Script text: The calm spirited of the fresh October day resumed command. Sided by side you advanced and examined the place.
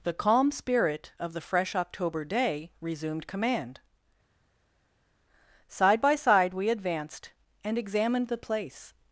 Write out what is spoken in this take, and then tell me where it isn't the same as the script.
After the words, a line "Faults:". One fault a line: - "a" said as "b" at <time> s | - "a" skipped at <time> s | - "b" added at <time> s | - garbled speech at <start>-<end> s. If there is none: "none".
The calm spirit of the fresh October day resumed command. Side by side we advanced and examined the place.
Faults:
- "spirited" said as "spirit" at 0.5 s
- "Sided" said as "Side" at 5.7 s
- "you" said as "we" at 6.5 s